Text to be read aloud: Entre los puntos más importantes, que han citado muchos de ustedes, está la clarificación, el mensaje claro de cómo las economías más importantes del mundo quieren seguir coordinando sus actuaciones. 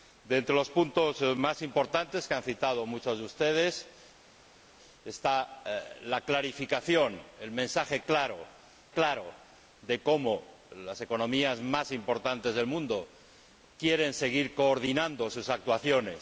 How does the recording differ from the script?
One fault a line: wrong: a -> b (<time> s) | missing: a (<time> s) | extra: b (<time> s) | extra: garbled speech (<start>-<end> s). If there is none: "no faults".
extra: claro (8.9 s)